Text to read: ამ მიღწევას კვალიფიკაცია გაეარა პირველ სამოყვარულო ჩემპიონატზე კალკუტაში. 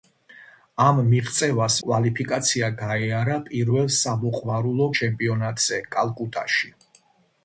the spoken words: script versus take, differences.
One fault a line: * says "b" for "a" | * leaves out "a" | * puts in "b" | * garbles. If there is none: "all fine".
all fine